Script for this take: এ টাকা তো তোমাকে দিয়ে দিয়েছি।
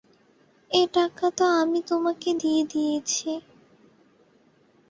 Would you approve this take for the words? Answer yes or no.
no